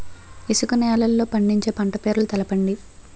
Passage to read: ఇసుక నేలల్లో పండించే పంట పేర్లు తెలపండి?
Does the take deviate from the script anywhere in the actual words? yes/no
no